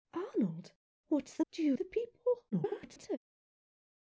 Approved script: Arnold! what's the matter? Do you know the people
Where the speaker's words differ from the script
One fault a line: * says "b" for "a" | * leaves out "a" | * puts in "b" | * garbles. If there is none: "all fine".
* leaves out "matter"
* leaves out "know"
* garbles